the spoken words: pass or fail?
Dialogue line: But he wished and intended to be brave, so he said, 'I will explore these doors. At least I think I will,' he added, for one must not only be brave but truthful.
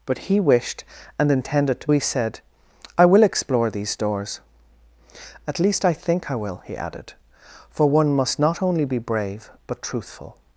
fail